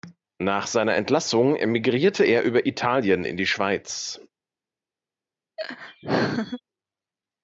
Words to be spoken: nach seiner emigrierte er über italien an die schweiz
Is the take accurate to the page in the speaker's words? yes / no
no